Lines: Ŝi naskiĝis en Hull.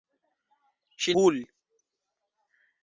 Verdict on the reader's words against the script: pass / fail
fail